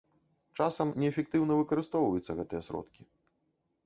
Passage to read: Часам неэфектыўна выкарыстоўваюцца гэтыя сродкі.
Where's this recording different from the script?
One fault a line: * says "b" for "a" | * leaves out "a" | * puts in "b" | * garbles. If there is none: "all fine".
all fine